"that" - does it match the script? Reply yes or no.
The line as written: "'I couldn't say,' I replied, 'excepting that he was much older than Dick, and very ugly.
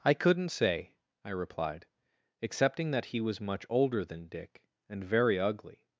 yes